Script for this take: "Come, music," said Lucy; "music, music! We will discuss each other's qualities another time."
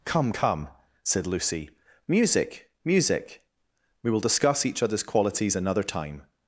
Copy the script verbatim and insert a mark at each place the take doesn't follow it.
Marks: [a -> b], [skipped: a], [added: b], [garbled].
"Come, [music," -> come] said Lucy; "music, music! We will discuss each other's qualities another time."